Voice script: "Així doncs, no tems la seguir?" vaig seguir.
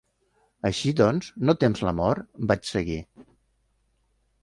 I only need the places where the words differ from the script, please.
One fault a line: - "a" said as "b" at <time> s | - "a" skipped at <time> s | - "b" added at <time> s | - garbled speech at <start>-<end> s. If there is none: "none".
- "seguir" said as "mort" at 2.0 s